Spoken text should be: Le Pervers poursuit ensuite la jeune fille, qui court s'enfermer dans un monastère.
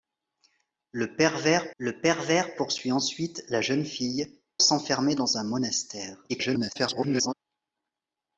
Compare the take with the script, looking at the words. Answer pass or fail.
fail